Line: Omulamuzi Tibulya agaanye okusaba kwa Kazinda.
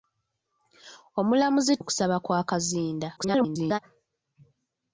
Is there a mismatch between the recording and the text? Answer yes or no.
yes